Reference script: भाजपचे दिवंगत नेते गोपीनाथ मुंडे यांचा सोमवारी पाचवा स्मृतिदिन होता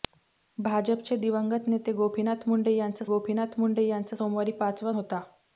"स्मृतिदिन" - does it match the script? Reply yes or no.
no